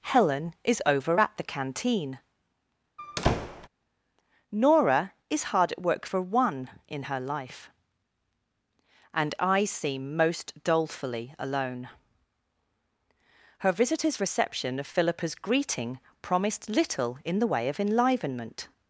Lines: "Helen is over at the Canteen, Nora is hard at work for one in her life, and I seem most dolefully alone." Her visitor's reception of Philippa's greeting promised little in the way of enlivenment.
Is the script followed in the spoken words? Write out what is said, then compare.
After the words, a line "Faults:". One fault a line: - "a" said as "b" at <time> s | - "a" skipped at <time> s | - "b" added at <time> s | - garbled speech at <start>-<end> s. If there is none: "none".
"Helen is over at the Canteen, Nora is hard at work for one in her life, and I seem most dolefully alone." Her visitor's reception of Philippa's greeting promised little in the way of enlivenment.
Faults:
none